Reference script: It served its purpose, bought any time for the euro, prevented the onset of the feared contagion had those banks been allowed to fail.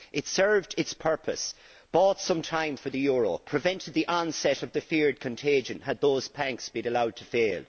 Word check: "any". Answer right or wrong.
wrong